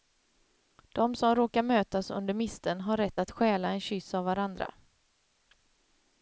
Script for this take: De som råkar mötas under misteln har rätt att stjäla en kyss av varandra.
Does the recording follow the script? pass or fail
pass